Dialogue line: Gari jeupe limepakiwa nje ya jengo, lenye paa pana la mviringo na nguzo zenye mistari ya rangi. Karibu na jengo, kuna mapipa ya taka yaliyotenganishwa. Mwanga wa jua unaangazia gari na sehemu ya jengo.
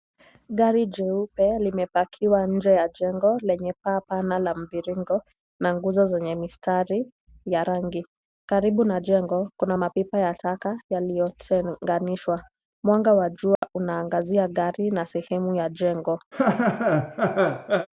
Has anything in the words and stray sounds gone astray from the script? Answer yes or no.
yes